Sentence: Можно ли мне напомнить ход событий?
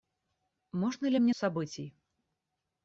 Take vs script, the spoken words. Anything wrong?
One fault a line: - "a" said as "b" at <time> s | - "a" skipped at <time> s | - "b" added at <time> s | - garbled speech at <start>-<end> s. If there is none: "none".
- "напомнить ход" skipped at 1.3 s